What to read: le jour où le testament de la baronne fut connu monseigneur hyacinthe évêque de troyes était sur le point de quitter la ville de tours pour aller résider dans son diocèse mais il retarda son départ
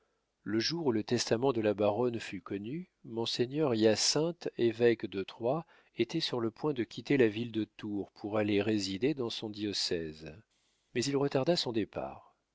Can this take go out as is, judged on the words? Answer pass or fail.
pass